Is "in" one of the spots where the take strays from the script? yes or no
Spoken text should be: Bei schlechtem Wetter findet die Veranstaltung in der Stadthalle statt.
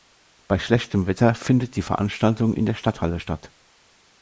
no